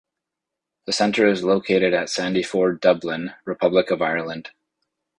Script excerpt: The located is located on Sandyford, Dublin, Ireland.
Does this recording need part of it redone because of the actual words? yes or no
yes